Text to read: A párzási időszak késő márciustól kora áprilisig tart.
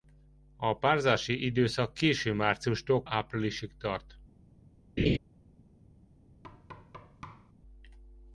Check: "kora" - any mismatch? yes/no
yes